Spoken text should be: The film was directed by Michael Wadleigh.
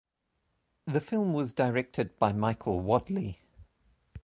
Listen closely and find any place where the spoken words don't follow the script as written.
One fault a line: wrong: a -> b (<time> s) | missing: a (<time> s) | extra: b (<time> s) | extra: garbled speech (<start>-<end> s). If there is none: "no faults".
no faults